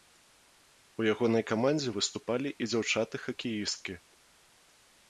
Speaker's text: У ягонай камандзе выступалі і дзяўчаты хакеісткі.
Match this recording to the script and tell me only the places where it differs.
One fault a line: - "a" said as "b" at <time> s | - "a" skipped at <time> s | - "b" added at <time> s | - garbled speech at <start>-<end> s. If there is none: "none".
none